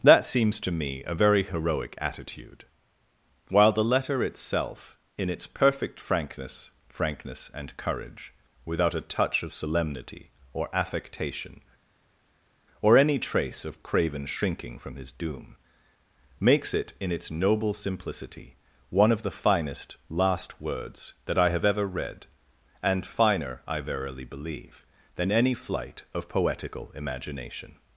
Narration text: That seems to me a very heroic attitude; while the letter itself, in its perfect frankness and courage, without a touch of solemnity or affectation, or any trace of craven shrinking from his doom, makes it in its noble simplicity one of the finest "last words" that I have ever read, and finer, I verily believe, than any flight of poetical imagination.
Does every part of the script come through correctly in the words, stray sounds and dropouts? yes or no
no